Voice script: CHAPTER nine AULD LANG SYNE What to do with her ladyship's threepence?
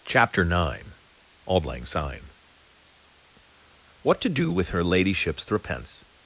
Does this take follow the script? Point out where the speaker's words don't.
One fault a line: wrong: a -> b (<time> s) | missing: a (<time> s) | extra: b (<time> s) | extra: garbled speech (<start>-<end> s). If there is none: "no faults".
no faults